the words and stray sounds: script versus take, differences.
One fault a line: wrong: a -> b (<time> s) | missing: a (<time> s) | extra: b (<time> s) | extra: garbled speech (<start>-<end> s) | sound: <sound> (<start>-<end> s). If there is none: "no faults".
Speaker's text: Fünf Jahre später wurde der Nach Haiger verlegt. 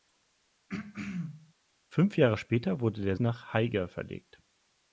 sound: throat clearing (0.7-1.5 s)